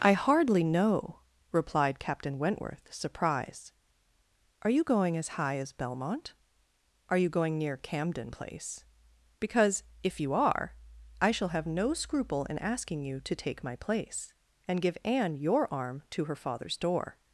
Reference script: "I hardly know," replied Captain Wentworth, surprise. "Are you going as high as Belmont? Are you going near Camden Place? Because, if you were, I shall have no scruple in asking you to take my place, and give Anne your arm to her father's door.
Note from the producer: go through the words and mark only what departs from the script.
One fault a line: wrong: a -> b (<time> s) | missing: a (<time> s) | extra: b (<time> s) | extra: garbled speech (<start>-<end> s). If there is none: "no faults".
wrong: surprise -> surprised (2.9 s)
wrong: were -> are (10.3 s)